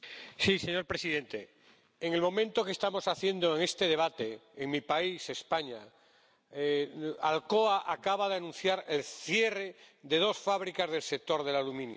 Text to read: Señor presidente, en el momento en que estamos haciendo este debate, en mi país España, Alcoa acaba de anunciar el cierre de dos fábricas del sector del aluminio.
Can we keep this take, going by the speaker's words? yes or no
yes